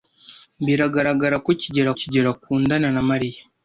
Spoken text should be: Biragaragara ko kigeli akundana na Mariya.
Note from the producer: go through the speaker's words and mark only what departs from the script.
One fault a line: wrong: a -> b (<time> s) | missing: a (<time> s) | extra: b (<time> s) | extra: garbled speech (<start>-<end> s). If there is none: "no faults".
extra: kigeli (2.0 s)